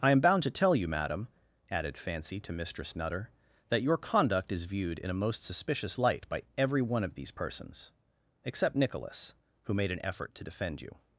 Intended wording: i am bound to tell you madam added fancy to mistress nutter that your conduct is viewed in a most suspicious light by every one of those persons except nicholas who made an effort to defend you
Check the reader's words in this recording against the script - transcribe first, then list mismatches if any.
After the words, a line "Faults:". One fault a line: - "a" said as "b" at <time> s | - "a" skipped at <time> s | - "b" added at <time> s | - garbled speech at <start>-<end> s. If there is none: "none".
i am bound to tell you madam added fancy to mistress nutter that your conduct is viewed in a most suspicious light by every one of these persons except nicholas who made an effort to defend you
Faults:
- "those" said as "these" at 7.1 s